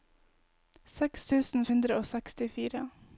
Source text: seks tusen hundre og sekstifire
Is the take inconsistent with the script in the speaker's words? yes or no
no